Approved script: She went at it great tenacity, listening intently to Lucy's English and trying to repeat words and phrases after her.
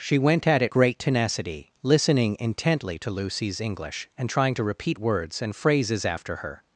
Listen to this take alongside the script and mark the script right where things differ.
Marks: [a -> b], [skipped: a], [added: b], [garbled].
She went at it great tenacity, listening intently to Lucy's English and trying to repeat words and phrases after her.